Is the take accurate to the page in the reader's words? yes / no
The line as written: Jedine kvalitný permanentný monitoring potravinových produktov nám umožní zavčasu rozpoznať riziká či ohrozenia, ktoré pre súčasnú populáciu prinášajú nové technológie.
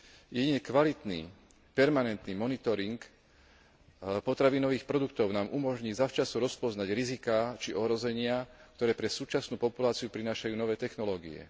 yes